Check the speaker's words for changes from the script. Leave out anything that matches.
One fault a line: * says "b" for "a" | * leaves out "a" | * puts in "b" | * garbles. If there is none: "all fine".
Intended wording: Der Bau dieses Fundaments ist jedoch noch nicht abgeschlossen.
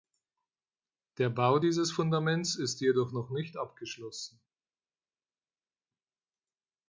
all fine